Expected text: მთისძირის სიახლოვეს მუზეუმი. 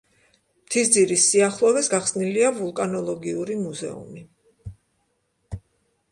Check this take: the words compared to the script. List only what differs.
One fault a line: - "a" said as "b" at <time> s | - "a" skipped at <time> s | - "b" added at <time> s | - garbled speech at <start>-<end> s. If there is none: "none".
- "გახსნილია ვულკანოლოგიური" added at 1.9 s